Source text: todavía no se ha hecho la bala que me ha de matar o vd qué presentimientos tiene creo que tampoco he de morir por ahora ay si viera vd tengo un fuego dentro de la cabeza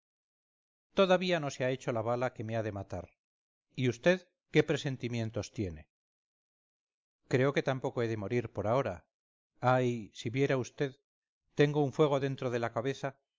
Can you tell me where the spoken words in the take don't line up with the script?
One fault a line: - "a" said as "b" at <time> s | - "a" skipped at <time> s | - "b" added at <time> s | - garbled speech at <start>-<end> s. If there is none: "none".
- "o" said as "y" at 3.8 s